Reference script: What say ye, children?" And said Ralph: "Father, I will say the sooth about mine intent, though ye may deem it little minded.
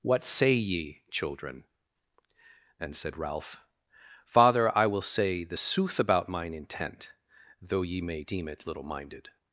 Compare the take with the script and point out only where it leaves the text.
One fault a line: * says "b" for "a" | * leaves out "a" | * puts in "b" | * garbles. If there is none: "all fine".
all fine